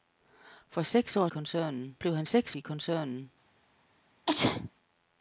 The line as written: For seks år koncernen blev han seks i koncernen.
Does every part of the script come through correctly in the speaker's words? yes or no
yes